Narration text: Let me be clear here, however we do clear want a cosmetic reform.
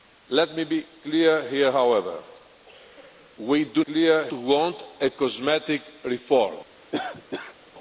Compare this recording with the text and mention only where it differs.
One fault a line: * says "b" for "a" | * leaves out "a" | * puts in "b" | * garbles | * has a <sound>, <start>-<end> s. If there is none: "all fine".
* has a cough, 6.9-7.6 s